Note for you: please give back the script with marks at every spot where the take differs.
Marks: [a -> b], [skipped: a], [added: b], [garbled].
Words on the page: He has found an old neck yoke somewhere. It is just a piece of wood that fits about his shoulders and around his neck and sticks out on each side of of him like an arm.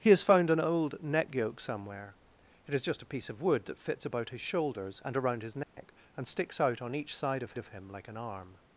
He has found an old neck yoke somewhere. It is just a piece of wood that fits about his shoulders and around his neck and sticks out on each side of of him like an arm.